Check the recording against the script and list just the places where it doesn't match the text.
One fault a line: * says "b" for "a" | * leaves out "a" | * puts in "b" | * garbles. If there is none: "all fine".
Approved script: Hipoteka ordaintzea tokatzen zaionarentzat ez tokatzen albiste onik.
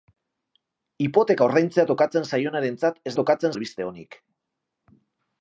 all fine